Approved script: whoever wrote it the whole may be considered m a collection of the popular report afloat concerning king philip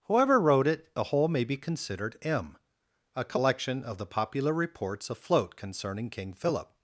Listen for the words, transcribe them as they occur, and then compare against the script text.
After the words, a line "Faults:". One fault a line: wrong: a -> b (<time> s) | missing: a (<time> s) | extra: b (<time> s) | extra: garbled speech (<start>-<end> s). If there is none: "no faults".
whoever wrote it the whole may be considered m a collection of the popular reports afloat concerning king philip
Faults:
wrong: report -> reports (4.5 s)